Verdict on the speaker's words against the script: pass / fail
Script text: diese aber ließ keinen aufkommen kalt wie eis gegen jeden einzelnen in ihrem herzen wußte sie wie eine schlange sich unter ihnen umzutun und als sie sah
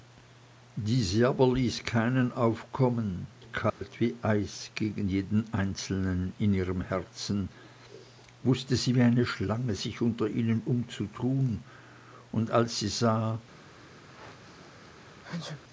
pass